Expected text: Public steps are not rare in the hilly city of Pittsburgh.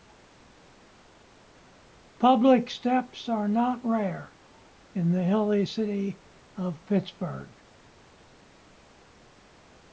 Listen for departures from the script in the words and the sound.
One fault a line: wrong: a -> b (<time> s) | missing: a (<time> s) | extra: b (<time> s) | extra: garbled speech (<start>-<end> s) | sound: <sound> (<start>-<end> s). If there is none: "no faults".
no faults